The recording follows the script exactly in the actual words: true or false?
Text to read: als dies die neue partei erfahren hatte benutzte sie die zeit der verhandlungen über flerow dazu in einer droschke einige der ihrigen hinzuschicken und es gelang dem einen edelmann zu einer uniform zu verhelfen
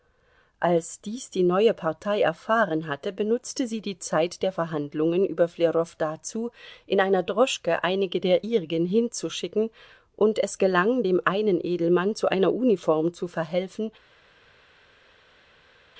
true